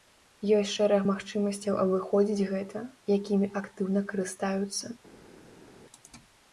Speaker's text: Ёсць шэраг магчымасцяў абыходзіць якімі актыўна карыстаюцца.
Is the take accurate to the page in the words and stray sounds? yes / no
no